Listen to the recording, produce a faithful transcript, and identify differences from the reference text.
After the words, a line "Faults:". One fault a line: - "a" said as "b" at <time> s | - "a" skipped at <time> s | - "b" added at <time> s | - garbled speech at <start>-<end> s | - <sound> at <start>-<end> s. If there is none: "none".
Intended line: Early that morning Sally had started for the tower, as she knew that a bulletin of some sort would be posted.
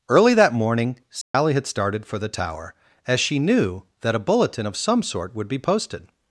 Early that morning Sally had started for the tower, as she knew that a bulletin of some sort would be posted.
Faults:
- dropout at 1.2-1.3 s